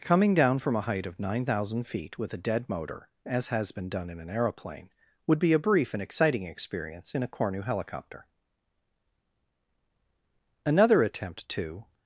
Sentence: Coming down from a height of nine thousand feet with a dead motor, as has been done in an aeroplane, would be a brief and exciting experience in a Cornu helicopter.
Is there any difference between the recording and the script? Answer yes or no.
yes